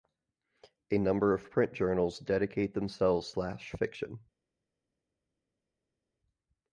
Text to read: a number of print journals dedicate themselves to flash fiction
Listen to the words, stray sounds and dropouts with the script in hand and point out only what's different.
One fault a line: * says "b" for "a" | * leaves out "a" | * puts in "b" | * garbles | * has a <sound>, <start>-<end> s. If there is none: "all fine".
* leaves out "to"